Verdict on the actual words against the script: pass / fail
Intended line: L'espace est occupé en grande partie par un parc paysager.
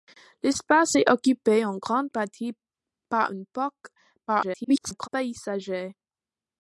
fail